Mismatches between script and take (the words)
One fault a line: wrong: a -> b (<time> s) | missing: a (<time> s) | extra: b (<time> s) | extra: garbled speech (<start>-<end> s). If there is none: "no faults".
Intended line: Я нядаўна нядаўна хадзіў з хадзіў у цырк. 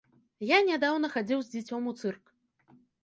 missing: нядаўна (1.1 s)
wrong: хадзіў -> дзіцём (1.6 s)